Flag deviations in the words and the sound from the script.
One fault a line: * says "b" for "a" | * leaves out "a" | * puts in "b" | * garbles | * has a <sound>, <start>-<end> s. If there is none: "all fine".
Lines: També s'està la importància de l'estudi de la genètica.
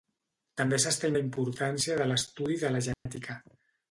* has a dropout, 2.9-3.1 s